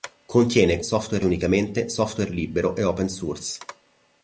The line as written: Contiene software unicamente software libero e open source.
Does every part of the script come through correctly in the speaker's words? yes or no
yes